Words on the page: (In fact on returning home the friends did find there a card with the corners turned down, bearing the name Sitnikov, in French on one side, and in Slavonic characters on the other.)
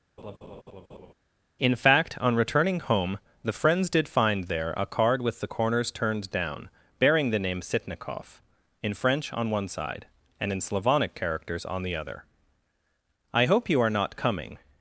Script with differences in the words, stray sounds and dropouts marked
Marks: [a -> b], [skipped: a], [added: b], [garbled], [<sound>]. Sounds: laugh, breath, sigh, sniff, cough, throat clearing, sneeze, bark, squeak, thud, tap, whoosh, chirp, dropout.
[laugh] (In fact on returning home the friends did find there a card with the corners turned down, bearing the name Sitnikov, in French on one side, and in Slavonic characters on the other.) [added: I hope you are not coming]